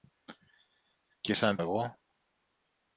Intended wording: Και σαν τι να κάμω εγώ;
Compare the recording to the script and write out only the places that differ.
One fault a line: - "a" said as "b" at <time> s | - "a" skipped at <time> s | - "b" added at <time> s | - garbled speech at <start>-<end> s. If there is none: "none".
- "τι να κάμω" skipped at 1.6 s